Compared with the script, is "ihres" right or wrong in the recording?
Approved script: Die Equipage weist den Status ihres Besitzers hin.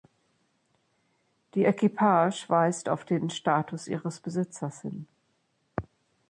right